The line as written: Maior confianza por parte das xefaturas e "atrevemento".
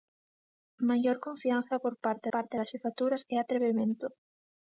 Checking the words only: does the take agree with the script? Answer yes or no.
no